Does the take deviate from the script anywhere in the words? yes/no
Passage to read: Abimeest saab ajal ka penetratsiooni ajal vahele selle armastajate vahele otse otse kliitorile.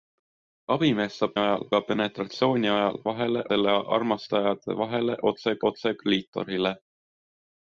no